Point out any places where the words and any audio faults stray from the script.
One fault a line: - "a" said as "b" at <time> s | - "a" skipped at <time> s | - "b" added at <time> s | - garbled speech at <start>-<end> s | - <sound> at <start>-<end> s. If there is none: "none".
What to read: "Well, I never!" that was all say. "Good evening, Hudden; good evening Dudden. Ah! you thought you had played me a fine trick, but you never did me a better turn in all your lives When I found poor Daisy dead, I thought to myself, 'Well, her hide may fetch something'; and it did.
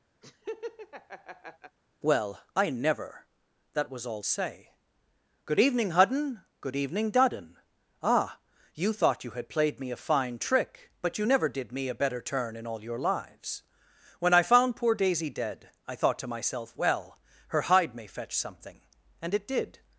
- laugh at 0.2-1.8 s